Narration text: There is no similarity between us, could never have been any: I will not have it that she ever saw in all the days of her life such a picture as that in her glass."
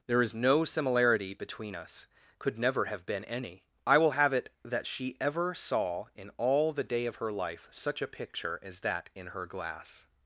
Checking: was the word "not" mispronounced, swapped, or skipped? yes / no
yes